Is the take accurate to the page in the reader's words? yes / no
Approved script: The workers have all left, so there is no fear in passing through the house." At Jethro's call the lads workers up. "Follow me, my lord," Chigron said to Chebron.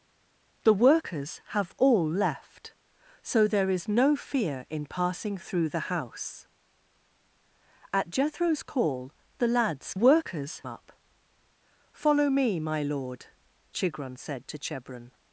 yes